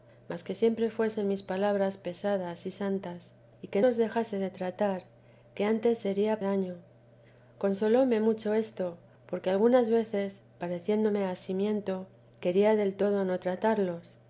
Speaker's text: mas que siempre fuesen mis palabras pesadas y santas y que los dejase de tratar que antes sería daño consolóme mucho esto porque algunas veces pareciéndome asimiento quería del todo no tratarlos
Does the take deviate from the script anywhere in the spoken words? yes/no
no